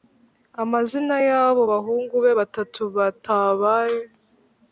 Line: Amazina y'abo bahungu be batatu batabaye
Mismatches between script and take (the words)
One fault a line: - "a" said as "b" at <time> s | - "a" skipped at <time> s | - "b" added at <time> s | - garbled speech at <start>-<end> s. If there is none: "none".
none